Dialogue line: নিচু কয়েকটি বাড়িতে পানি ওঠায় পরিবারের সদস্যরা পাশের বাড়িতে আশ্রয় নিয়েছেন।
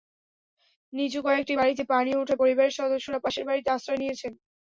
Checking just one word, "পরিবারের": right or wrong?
right